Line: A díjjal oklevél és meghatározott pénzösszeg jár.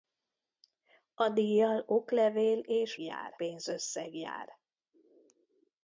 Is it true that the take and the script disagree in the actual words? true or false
true